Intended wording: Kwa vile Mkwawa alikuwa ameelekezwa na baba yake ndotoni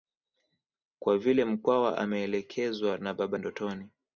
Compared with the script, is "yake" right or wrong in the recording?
wrong